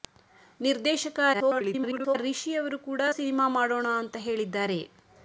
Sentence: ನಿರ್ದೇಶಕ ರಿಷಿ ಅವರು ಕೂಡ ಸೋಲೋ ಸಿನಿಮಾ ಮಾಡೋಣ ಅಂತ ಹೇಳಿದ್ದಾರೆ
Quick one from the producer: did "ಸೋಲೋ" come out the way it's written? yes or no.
no